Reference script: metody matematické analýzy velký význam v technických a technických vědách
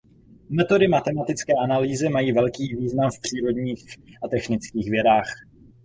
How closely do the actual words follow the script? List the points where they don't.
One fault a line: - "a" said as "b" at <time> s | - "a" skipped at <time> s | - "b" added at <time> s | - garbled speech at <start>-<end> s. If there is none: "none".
- "mají" added at 2.1 s
- "technických" said as "přírodních" at 3.2 s